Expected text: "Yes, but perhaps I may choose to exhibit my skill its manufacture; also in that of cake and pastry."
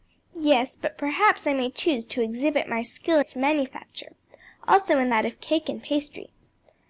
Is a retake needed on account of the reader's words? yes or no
no